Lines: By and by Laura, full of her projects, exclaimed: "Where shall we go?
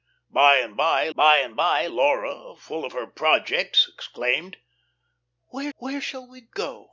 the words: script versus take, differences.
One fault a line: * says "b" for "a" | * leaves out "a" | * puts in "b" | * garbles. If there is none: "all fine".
* puts in "by and by"
* puts in "where"